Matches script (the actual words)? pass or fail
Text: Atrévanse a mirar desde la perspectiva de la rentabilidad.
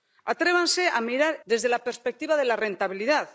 pass